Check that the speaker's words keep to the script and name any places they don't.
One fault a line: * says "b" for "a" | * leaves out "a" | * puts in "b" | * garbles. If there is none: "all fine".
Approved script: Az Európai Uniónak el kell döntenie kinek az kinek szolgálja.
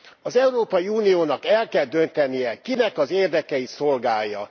* says "érdekeit" for "kinek"